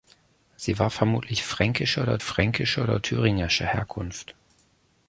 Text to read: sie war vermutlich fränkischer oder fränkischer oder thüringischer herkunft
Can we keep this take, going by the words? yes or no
yes